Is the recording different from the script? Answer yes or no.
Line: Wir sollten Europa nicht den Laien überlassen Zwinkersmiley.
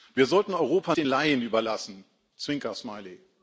yes